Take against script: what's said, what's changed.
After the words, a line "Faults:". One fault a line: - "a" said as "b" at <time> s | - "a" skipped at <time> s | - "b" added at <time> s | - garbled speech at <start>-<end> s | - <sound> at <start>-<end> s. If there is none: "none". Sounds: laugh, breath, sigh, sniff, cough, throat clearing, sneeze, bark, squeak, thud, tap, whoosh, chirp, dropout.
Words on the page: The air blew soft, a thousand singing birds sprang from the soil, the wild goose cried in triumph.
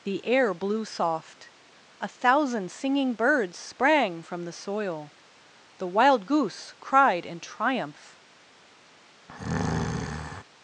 The air blew soft, a thousand singing birds sprang from the soil, the wild goose cried in triumph.
Faults:
- breath at 9.3-10.4 s